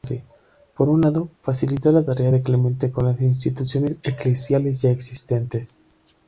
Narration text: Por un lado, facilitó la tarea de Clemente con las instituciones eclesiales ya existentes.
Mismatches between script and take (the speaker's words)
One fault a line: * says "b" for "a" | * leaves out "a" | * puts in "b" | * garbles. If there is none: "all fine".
all fine